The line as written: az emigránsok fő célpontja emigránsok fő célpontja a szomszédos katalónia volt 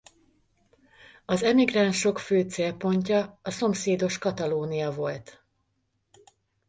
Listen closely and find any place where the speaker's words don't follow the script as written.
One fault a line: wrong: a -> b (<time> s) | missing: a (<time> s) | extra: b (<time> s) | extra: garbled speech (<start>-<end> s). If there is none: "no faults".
missing: emigránsok fő célpontja (3.4 s)